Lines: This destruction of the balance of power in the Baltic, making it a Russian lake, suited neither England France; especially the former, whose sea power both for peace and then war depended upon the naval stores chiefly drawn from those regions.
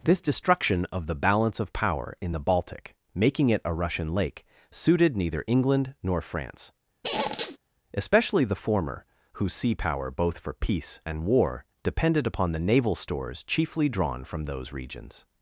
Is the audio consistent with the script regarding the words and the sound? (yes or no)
no